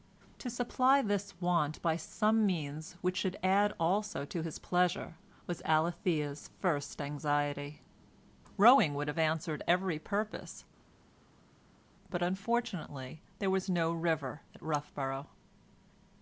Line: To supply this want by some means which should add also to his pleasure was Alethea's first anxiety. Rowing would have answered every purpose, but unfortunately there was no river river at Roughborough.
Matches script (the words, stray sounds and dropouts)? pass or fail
fail